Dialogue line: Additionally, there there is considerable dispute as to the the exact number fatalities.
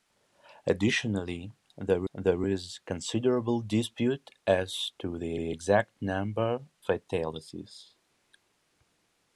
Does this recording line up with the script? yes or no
yes